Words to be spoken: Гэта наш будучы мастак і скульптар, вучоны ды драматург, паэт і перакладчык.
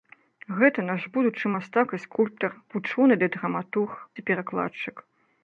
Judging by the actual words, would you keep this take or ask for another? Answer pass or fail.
fail